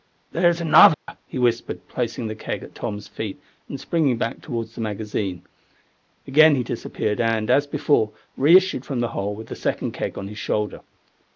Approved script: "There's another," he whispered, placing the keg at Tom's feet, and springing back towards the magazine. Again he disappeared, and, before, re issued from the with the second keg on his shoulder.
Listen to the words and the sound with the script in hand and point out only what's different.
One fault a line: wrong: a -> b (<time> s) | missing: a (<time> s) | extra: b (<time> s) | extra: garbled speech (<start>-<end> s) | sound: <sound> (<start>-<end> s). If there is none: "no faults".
sound: dropout (0.9-1.1 s)
extra: as (7.5 s)
extra: hole (9.1 s)